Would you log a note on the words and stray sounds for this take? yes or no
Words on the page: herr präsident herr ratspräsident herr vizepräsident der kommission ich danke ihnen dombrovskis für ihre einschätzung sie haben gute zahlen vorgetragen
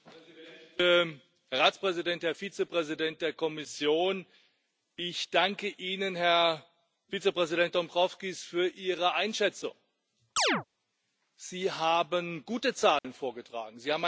yes